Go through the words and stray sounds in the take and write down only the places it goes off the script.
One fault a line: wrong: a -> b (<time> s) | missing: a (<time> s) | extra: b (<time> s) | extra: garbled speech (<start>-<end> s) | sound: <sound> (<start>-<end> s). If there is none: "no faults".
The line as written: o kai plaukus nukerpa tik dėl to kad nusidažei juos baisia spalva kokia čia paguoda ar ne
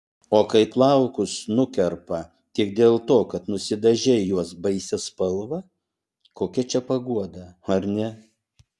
no faults